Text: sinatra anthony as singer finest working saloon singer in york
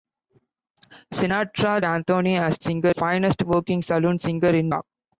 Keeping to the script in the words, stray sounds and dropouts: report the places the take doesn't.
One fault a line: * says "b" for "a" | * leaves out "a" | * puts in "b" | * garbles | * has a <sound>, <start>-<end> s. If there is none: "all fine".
all fine